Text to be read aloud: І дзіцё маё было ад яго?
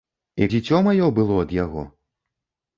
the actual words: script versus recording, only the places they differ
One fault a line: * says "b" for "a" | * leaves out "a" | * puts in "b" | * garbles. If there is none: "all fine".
all fine